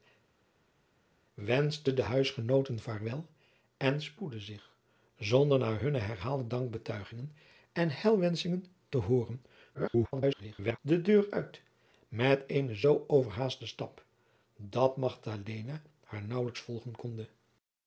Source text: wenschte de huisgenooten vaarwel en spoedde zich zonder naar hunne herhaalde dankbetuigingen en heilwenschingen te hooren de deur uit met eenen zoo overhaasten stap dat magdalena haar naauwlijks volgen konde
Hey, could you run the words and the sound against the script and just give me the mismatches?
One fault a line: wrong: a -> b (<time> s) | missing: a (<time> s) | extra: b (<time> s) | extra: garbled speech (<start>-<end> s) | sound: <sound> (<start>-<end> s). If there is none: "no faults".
extra: garbled speech (9.7-10.8 s)